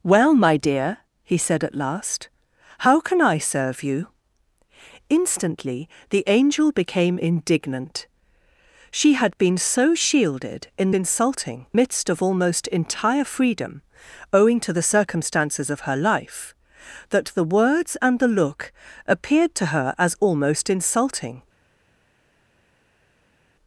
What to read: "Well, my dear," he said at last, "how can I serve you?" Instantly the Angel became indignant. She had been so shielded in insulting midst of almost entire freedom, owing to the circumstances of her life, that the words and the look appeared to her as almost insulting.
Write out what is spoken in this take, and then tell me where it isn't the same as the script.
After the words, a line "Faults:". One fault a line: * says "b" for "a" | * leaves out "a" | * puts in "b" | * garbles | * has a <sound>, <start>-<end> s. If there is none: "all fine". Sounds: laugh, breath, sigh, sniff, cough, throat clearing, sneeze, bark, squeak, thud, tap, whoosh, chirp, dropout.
"Well, my dear," he said at last, "how can I serve you?" Instantly the Angel became indignant. She had been so shielded in insulting midst of almost entire freedom, owing to the circumstances of her life, that the words and the look appeared to her as almost insulting.
Faults:
all fine